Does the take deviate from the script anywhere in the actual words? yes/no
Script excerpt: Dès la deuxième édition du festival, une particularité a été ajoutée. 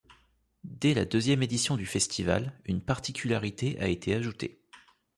no